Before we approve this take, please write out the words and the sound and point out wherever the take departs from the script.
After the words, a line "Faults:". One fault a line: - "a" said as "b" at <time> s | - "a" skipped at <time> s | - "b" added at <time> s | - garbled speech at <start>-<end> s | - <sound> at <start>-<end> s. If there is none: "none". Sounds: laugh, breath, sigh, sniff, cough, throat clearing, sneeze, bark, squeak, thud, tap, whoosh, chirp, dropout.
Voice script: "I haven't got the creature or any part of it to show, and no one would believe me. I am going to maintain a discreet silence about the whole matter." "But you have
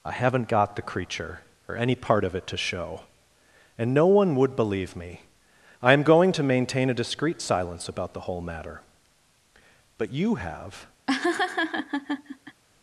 "I haven't got the creature or any part of it to show, and no one would believe me. I am going to maintain a discreet silence about the whole matter." "But you have
Faults:
- laugh at 11.1-12.6 s